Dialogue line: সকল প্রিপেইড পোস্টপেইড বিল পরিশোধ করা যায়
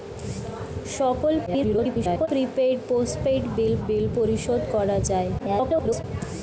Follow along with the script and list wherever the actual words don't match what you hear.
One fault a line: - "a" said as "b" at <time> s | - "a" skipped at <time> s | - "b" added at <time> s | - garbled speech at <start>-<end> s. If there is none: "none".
- garbled speech at 1.5-2.3 s
- "বিল" added at 3.9 s
- garbled speech at 5.4-6.0 s